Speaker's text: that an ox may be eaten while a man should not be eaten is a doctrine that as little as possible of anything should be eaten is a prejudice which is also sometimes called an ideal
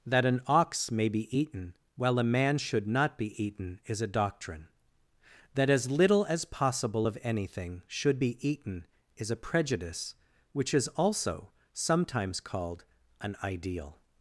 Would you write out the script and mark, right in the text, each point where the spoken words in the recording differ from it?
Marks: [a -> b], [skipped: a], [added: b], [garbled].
that an ox may be eaten while a man should not be eaten is a doctrine that as little as possible of anything should be eaten is a prejudice which is also sometimes called an ideal